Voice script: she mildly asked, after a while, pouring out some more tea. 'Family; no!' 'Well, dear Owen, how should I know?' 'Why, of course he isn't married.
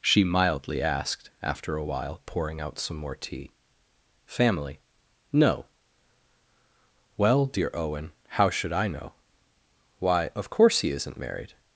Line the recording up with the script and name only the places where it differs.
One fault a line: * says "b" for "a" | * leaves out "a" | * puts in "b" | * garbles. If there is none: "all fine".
all fine